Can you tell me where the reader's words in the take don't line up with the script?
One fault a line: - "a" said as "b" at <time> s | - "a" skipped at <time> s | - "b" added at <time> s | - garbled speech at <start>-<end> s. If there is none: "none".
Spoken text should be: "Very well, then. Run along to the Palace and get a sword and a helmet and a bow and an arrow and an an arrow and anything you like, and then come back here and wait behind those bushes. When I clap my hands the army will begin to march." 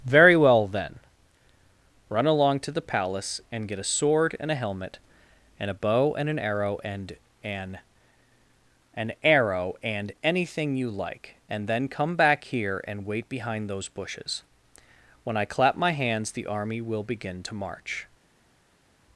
none